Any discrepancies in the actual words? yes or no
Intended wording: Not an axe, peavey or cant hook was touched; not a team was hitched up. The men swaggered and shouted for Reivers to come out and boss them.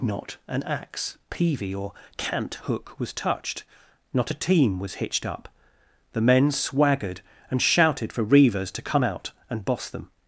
no